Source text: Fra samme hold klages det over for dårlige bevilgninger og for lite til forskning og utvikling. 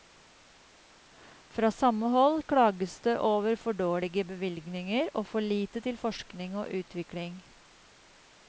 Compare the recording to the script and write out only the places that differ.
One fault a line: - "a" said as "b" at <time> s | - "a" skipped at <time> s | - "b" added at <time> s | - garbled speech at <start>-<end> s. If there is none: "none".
none